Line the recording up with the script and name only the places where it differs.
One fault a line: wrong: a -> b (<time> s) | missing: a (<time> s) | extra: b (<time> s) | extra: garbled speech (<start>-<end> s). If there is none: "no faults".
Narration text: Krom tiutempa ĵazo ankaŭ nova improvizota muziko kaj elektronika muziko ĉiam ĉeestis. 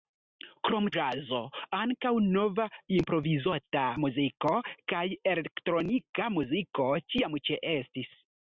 missing: tiutempa (0.8 s)